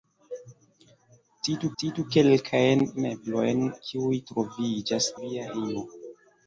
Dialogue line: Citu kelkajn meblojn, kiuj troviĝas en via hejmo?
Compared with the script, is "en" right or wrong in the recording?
wrong